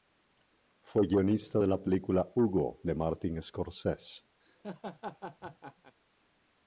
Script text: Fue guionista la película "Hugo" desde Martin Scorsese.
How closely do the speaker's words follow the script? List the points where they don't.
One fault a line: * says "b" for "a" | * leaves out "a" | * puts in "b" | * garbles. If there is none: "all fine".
* puts in "de"
* says "de" for "desde"